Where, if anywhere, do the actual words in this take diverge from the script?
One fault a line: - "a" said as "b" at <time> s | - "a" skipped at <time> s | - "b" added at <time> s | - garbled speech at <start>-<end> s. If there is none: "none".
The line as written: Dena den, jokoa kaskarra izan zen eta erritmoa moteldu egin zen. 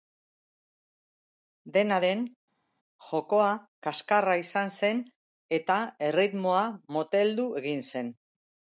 none